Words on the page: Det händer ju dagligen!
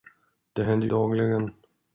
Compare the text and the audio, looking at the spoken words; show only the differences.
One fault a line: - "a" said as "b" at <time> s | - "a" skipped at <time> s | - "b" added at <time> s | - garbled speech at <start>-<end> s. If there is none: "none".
- "ju" skipped at 0.9 s